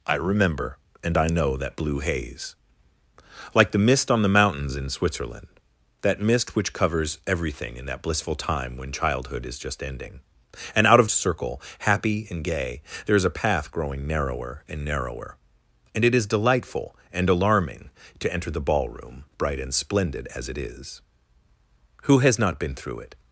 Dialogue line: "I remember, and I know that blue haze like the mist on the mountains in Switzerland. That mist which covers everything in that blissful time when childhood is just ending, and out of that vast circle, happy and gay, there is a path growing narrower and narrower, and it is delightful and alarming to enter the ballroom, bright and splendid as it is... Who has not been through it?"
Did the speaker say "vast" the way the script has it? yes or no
no